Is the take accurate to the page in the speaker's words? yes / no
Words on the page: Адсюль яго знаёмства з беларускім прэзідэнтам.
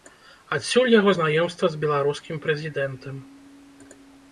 yes